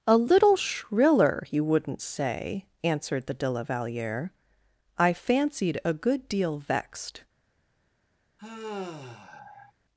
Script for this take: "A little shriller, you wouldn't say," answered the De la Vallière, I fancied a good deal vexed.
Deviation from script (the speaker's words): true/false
false